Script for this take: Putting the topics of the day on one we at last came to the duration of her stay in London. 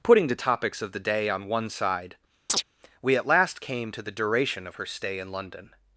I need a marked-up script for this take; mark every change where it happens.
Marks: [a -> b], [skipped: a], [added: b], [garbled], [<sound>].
Putting the topics of the day on one [added: side] [chirp] we at last came to the duration of her stay in London.